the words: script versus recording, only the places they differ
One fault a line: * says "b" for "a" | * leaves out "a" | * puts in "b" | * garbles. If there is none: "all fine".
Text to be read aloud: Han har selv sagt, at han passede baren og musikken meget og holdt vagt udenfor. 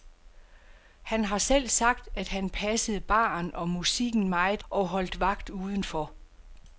all fine